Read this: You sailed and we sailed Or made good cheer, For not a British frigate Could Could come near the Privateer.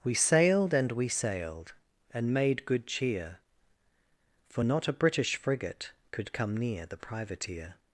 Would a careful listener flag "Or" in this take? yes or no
yes